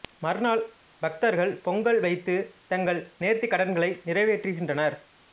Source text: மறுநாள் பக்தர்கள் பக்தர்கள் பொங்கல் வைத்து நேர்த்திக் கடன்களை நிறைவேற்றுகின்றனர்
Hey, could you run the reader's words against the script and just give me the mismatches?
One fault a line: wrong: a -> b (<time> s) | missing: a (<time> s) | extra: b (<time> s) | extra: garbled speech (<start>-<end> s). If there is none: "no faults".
missing: பக்தர்கள் (1.5 s)
extra: தங்கள் (2.7 s)